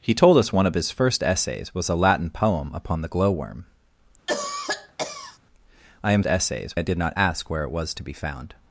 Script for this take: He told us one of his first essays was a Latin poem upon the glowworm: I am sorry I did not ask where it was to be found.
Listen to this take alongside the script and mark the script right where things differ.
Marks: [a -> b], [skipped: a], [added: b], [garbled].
He told us one of his first essays was a Latin poem upon the glowworm: I am [sorry -> essays] I did not ask where it was to be found.